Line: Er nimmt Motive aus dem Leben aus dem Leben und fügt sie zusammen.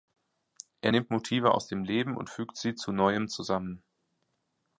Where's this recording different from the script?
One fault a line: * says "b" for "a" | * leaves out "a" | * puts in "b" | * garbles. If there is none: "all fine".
* leaves out "aus dem Leben"
* puts in "zu neuem"